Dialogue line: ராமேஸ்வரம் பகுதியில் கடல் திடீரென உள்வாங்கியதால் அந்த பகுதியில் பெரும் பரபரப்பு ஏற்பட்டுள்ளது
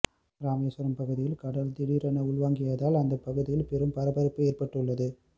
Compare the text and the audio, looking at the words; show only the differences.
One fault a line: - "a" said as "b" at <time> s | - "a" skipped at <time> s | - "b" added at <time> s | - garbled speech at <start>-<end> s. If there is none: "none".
none